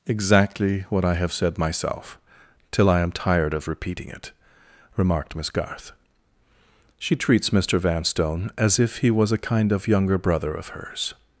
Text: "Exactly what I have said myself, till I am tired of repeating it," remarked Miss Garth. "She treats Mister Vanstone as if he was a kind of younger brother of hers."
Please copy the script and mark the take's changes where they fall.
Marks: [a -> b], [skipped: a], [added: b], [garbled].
"Exactly what I have said myself, till I am tired of repeating it," remarked Miss Garth. "She treats Mister Vanstone as if he was a kind of younger brother of hers."